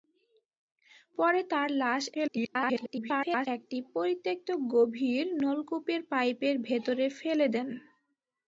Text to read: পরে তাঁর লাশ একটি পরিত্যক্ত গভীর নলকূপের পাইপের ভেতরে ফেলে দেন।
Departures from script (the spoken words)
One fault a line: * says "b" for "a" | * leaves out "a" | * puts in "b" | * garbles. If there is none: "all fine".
* garbles